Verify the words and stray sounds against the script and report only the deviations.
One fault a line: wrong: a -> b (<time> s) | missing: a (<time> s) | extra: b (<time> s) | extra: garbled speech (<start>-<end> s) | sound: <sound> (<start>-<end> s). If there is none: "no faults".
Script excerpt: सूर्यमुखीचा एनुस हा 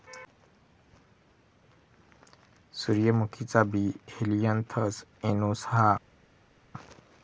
extra: बी हेलियनथस (3.7 s)